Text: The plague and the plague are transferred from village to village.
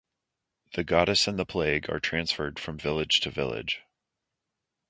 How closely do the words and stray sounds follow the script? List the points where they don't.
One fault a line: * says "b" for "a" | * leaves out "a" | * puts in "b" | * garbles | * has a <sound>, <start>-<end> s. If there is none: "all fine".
* says "goddess" for "plague"